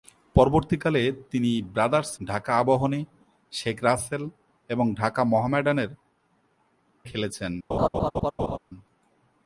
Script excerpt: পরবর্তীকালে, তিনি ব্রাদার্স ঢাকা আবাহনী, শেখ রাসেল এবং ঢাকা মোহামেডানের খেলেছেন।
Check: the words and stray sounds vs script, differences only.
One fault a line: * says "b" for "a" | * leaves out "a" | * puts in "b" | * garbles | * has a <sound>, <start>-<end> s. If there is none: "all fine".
* has a laugh, 7.7-8.6 s